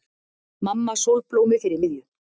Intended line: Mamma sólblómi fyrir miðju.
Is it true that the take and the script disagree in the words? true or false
false